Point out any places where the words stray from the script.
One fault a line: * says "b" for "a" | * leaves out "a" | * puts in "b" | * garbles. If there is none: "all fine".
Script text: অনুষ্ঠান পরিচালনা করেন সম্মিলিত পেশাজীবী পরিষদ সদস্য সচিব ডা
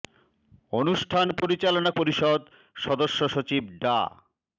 * leaves out "করেন সম্মিলিত পেশাজীবী"